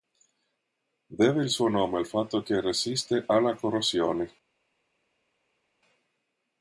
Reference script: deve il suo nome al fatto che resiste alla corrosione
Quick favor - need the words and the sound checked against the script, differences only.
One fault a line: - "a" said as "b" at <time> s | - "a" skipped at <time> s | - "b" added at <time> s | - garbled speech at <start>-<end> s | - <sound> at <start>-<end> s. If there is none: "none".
none